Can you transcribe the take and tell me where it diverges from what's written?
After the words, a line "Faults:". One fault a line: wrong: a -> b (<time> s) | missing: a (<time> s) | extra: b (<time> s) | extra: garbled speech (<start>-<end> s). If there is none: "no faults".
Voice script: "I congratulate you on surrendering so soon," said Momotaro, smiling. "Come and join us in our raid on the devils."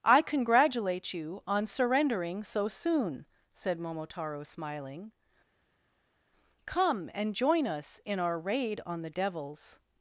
"I congratulate you on surrendering so soon," said Momotaro, smiling. "Come and join us in our raid on the devils."
Faults:
no faults